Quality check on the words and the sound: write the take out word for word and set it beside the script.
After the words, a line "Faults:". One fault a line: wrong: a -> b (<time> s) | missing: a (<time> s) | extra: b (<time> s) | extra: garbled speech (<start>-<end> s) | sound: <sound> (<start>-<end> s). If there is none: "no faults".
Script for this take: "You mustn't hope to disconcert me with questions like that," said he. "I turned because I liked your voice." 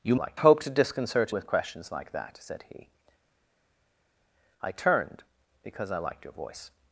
"You liked hope to disconcert with questions like that," said he. "I turned because I liked your voice."
Faults:
wrong: mustn't -> liked (0.1 s)
missing: me (1.3 s)